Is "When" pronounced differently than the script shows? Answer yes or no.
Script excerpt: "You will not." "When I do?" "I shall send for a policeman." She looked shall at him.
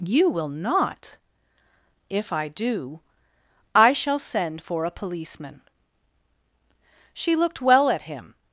yes